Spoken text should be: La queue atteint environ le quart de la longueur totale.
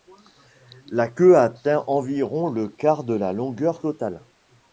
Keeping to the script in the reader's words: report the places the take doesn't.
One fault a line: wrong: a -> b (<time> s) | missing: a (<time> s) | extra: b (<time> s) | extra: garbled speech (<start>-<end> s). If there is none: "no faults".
no faults